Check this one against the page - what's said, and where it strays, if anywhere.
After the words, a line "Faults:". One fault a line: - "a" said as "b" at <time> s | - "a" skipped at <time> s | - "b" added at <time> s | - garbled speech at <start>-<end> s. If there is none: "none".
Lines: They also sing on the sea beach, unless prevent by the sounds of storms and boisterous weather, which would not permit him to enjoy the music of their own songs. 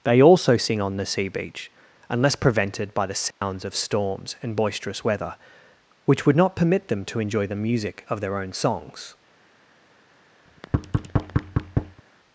They also sing on the sea beach, unless prevented by the sounds of storms and boisterous weather, which would not permit them to enjoy the music of their own songs.
Faults:
- "prevent" said as "prevented" at 2.4 s
- "him" said as "them" at 6.9 s